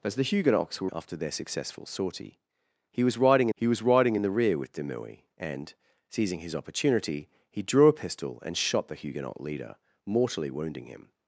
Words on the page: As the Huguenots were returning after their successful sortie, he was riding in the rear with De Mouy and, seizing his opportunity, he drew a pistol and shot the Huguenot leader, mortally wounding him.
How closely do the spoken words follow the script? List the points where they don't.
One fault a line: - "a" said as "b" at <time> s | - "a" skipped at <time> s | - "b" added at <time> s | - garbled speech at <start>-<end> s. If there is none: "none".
- "returning" skipped at 0.9 s
- "he was riding" added at 3.5 s